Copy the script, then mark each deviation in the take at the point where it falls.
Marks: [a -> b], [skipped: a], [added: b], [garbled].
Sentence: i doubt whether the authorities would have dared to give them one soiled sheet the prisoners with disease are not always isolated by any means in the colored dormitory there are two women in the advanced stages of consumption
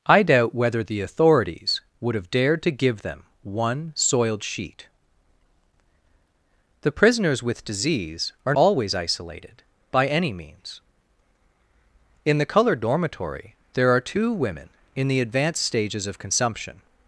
i doubt whether the authorities would have dared to give them one soiled sheet the prisoners with disease are [skipped: not] always isolated by any means in the colored dormitory there are two women in the advanced stages of consumption